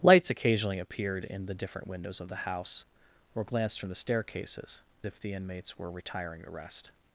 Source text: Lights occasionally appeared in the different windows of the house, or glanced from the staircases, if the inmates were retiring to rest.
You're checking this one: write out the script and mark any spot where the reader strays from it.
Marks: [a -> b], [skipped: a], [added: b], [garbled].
Lights occasionally appeared in the different windows of the house, or glanced from the staircases, if the inmates were retiring to rest.